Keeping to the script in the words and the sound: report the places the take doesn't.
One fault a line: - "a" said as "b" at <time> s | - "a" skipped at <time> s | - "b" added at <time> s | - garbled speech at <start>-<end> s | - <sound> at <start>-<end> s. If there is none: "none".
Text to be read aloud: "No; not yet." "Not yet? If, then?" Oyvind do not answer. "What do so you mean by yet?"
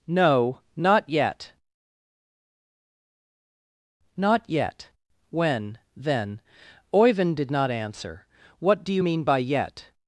- "If" said as "When" at 5.3 s
- "do" said as "did" at 7.4 s
- "so" skipped at 8.9 s